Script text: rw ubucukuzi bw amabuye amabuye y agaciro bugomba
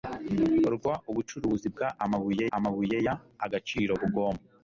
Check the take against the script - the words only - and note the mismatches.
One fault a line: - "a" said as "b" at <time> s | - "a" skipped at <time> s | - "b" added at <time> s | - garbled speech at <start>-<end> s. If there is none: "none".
none